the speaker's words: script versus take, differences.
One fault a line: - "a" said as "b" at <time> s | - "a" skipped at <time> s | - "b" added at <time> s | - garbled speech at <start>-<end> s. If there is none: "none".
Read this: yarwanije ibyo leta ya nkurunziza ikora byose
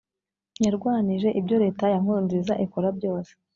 none